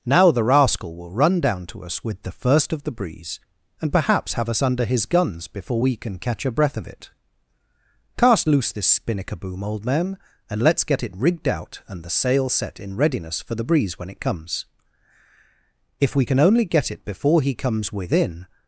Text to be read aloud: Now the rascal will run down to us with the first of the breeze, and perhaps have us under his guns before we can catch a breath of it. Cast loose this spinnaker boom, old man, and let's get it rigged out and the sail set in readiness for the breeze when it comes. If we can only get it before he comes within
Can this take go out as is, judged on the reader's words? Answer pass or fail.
pass